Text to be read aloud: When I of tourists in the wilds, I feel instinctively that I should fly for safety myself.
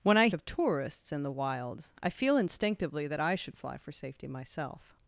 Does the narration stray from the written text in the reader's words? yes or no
no